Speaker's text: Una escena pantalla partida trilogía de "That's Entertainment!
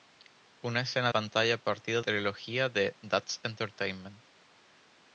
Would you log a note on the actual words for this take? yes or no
no